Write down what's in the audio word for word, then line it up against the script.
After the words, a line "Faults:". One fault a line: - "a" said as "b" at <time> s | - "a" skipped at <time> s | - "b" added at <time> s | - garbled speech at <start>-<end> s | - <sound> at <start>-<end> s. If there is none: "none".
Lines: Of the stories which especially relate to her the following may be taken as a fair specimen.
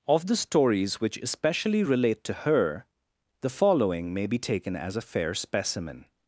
Of the stories which especially relate to her the following may be taken as a fair specimen.
Faults:
none